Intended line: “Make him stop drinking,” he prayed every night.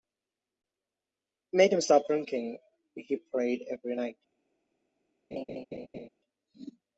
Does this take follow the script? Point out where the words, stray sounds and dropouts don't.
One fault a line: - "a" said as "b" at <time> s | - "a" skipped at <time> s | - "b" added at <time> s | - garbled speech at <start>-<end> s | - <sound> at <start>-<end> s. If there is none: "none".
- laugh at 5.3-6.1 s